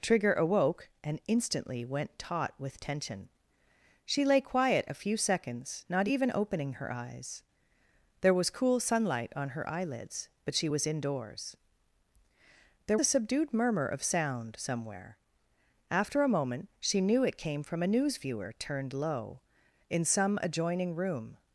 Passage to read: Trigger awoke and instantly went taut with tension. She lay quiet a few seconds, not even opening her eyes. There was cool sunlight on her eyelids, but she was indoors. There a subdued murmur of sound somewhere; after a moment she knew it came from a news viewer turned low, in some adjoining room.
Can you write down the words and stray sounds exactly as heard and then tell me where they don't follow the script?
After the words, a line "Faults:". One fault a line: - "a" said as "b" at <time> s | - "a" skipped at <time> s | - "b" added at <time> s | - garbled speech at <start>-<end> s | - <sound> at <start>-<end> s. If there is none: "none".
Trigger awoke and instantly went taut with tension. She lay quiet a few seconds, not even opening her eyes. There was cool sunlight on her eyelids, but she was indoors. There a subdued murmur of sound somewhere; after a moment she knew it came from a news viewer turned low, in some adjoining room.
Faults:
none